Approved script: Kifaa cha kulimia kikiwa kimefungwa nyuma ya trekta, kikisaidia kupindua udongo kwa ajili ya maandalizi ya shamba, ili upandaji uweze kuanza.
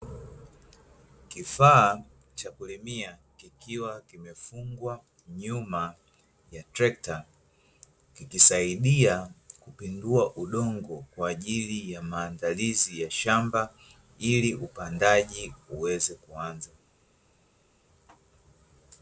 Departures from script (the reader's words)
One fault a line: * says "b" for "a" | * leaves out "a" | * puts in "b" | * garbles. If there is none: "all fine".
all fine